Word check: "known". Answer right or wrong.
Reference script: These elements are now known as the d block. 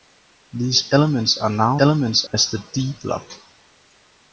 wrong